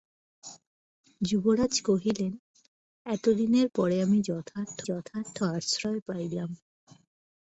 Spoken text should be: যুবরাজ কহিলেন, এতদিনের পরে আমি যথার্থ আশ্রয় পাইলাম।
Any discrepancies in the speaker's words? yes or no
yes